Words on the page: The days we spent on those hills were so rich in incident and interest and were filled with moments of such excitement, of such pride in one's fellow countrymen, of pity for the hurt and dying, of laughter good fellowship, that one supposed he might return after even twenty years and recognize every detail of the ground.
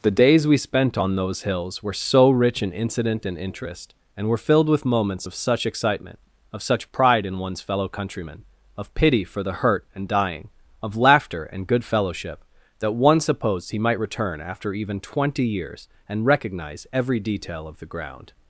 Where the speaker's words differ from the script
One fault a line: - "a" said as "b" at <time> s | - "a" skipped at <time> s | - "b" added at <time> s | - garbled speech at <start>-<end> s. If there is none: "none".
- "and" added at 11.5 s